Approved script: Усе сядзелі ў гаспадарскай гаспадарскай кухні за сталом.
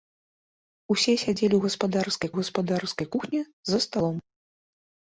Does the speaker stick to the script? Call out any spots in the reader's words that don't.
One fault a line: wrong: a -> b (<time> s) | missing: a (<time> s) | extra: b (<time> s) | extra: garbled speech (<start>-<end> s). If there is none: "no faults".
no faults